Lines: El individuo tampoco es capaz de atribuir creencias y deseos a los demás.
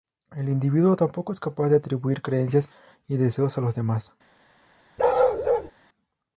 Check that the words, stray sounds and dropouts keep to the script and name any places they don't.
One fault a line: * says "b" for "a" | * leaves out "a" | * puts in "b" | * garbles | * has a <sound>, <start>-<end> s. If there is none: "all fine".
* has a bark, 5.0-5.7 s